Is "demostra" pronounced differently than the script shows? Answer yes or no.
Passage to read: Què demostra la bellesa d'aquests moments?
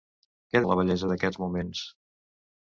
yes